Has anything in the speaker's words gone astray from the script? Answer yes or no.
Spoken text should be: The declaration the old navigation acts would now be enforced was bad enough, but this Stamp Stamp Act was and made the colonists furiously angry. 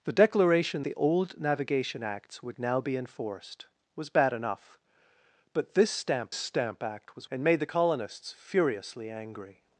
no